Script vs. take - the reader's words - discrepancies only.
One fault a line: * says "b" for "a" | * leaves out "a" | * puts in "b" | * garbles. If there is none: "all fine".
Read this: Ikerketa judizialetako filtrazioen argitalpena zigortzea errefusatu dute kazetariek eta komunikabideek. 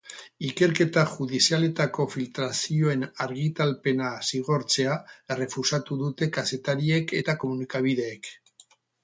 all fine